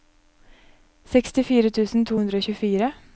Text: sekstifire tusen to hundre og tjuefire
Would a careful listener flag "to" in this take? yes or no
no